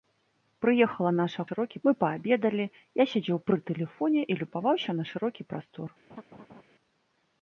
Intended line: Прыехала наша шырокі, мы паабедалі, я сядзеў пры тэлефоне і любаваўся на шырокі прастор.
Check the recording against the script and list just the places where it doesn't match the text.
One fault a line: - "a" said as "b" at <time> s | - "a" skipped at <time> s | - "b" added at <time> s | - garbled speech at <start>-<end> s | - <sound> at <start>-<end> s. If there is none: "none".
- laugh at 6.1-6.6 s